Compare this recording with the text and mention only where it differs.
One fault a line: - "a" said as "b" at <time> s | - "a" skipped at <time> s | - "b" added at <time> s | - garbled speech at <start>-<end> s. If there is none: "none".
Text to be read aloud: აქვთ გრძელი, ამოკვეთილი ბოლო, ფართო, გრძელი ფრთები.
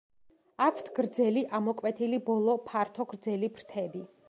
none